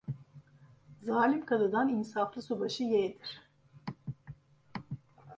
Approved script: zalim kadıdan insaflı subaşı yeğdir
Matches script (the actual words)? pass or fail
pass